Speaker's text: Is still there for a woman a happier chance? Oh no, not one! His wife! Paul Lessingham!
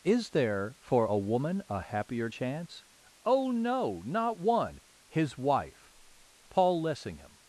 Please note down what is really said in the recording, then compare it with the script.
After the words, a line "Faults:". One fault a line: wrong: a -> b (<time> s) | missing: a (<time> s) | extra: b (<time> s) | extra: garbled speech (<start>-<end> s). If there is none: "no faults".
Is there for a woman a happier chance? Oh no, not one! His wife! Paul Lessingham!
Faults:
missing: still (0.3 s)